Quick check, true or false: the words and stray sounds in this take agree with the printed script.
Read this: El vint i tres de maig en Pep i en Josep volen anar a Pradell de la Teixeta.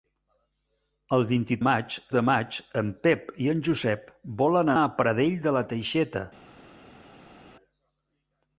false